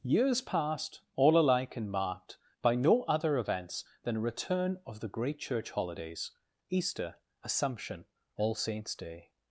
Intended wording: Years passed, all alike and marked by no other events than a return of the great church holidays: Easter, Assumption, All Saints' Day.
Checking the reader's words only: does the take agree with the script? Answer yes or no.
yes